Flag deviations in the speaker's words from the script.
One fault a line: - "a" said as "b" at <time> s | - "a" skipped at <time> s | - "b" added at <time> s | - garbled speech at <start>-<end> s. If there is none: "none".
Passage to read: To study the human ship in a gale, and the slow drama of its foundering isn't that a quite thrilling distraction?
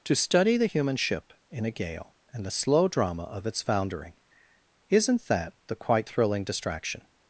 - "a" said as "the" at 5.7 s